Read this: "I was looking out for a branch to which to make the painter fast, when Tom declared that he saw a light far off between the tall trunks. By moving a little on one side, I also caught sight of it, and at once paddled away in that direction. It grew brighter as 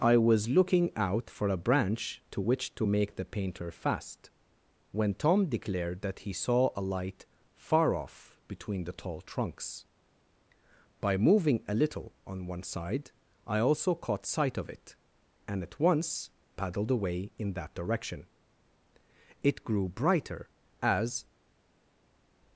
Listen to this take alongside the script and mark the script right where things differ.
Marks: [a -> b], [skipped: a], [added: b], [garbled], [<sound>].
"I was looking out for a branch to which to make the painter fast, when Tom declared that he saw a light far off between the tall trunks. By moving a little on one side, I also caught sight of it, and at once paddled away in that direction. It grew brighter as